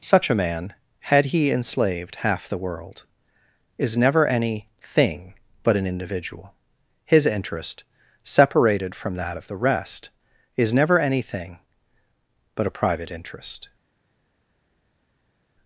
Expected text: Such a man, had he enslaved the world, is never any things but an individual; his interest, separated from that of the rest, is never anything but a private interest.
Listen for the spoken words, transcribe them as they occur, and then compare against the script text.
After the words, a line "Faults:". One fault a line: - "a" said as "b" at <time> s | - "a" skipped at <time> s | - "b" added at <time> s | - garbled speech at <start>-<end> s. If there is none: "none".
Such a man, had he enslaved half the world, is never any thing but an individual; his interest, separated from that of the rest, is never anything but a private interest.
Faults:
- "half" added at 2.2 s
- "things" said as "thing" at 4.8 s